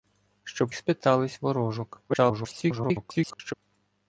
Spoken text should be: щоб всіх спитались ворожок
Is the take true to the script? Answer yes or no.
no